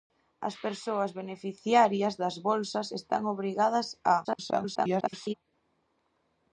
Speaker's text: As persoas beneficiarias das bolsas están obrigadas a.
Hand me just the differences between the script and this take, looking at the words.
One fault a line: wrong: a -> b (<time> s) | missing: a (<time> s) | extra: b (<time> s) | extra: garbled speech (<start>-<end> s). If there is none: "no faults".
extra: garbled speech (4.2-5.3 s)